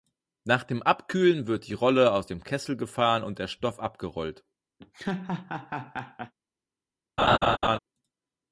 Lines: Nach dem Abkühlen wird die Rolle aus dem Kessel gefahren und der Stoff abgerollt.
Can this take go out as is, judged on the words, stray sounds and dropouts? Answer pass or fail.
fail